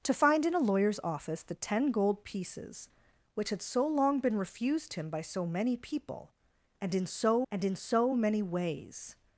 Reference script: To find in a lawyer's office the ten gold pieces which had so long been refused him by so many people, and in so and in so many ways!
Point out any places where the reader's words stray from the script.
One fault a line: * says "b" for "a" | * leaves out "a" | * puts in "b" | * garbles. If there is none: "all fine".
all fine